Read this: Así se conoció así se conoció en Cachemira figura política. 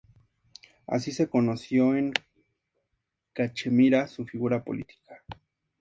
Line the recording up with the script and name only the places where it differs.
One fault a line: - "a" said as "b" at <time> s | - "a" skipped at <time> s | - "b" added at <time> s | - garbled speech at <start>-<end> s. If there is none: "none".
- "así se conoció" skipped at 1.9 s
- "su" added at 4.1 s